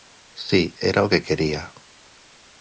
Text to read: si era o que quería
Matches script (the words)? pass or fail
pass